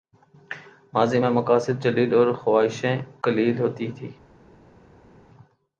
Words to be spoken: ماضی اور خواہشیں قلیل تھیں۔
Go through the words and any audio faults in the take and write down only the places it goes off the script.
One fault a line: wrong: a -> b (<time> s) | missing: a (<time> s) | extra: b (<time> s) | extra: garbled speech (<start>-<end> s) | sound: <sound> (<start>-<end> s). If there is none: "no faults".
extra: میں مقاصد جلیل (1.2 s)
extra: ہوتی (3.6 s)